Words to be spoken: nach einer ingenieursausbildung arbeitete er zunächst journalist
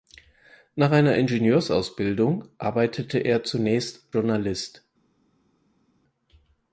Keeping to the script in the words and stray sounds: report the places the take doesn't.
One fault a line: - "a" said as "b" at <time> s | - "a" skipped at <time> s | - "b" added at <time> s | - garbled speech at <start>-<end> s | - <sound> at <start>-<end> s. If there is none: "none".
none